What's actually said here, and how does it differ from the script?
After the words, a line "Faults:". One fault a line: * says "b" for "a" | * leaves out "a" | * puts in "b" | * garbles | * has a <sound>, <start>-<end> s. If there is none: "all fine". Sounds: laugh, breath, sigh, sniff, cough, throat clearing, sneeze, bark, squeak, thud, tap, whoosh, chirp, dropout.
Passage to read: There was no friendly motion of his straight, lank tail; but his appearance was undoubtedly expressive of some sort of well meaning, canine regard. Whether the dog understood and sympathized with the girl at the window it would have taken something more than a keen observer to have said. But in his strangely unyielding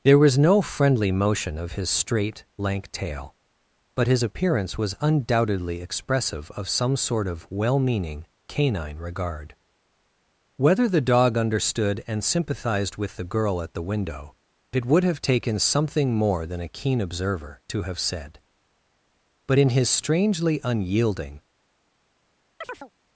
There was no friendly motion of his straight, lank tail; but his appearance was undoubtedly expressive of some sort of well meaning, canine regard. Whether the dog understood and sympathized with the girl at the window it would have taken something more than a keen observer to have said. But in his strangely unyielding
Faults:
* has a chirp, 22.6-22.9 s